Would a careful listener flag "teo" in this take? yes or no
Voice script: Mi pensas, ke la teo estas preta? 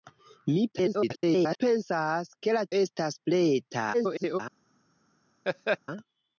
yes